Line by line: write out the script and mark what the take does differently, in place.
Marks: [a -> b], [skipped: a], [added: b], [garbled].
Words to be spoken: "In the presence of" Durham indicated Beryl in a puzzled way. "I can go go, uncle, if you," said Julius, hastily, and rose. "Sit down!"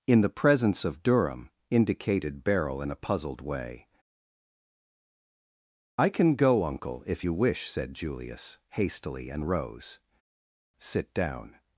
"In the presence of" Durham indicated Beryl in a puzzled way. "I can go [skipped: go,] uncle, if you," [added: wish] said Julius, hastily, and rose. "Sit down!"